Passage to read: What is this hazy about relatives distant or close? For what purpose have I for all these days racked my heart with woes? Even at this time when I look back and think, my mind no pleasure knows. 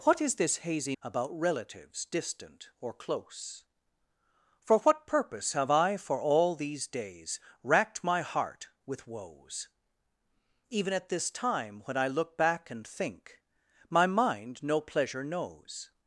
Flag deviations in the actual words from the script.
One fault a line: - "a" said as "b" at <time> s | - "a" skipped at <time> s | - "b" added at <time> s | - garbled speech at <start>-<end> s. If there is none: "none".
none